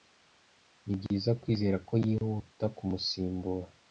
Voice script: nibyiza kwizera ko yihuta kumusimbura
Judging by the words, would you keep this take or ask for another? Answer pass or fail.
pass